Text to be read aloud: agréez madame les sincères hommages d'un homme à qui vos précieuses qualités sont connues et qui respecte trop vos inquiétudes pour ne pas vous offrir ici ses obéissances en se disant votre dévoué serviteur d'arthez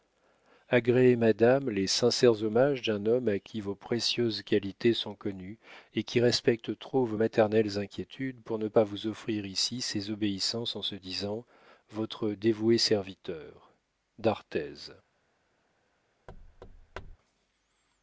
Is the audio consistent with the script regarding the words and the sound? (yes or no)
no